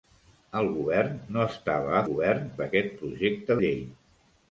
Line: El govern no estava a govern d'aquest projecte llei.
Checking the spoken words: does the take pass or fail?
pass